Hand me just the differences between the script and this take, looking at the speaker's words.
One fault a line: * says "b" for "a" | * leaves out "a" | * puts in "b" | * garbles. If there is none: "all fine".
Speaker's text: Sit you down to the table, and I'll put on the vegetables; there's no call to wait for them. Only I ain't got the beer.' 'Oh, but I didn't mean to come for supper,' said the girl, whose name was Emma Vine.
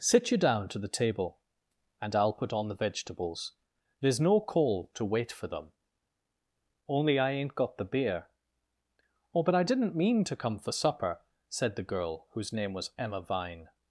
all fine